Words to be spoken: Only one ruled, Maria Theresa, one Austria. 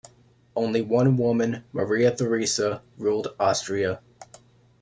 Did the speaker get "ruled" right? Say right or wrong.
wrong